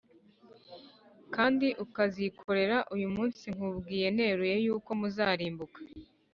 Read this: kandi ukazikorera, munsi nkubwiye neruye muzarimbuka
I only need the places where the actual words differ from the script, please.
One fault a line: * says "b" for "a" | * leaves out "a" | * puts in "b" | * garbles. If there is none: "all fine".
* puts in "uyu"
* puts in "yuko"